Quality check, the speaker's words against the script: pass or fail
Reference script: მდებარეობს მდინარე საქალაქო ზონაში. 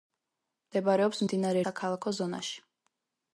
pass